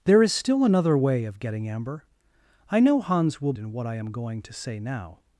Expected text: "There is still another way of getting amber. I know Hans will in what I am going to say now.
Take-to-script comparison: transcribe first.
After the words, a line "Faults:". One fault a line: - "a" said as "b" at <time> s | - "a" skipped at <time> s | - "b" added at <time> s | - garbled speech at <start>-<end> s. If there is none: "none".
"There is still another way of getting amber. I know Hans will in what I am going to say now.
Faults:
none